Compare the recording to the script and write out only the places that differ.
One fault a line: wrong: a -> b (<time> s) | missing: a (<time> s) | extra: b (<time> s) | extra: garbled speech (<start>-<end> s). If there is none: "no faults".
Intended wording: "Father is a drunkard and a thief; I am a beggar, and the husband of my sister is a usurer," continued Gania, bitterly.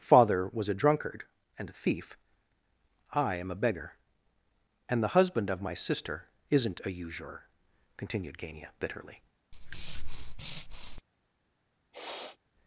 wrong: is -> was (0.5 s)
wrong: is -> isn't (6.5 s)